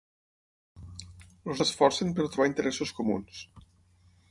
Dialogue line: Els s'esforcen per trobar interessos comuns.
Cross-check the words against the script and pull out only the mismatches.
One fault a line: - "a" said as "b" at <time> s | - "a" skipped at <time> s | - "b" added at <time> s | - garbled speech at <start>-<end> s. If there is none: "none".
none